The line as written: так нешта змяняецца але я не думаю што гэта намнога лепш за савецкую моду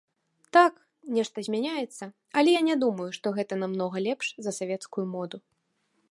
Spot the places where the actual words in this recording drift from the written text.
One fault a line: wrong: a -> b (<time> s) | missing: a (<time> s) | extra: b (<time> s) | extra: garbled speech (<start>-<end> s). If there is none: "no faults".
no faults